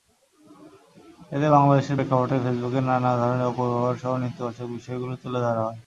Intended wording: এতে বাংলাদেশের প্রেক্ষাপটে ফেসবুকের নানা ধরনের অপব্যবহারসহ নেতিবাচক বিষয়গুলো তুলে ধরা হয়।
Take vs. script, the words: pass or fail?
pass